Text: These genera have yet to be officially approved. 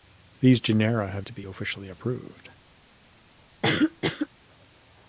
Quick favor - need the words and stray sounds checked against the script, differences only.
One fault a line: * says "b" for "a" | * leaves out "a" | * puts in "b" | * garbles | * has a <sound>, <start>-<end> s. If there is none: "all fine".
* leaves out "yet"
* has a cough, 3.6-4.3 s